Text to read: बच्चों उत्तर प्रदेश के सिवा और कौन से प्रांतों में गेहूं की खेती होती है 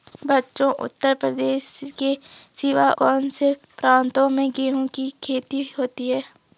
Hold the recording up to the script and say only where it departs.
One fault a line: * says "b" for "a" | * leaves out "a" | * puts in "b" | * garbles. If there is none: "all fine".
* leaves out "और"